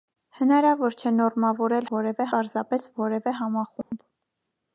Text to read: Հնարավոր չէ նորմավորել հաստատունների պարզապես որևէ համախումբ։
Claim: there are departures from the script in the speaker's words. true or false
true